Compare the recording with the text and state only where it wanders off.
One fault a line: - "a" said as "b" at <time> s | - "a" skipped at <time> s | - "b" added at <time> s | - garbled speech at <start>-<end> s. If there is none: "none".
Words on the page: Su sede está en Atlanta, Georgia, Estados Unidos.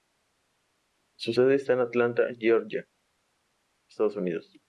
none